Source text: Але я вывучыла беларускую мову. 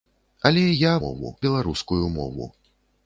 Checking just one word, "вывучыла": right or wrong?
wrong